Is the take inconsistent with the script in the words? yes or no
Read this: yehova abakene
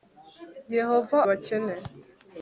no